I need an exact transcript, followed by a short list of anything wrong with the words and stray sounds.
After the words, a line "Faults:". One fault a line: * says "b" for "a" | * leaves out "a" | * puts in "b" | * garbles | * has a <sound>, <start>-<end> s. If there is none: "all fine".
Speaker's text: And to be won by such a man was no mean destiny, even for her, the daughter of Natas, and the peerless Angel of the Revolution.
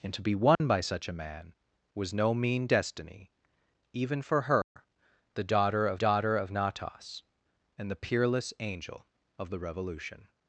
And to be won by such a man was no mean destiny, even for her, the daughter of daughter of Natas, and the peerless Angel of the Revolution.
Faults:
* has a dropout, 0.5-0.6 s
* has a dropout, 4.6-4.8 s
* puts in "daughter of"